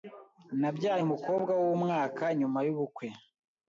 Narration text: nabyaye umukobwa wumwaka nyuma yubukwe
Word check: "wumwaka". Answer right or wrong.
right